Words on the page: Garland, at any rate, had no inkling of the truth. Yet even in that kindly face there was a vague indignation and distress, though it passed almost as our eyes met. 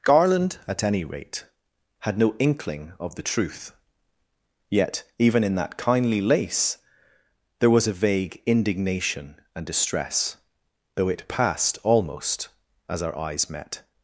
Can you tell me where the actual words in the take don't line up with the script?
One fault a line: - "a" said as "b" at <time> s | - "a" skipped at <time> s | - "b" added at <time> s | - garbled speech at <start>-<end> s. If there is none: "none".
- "face" said as "lace" at 6.2 s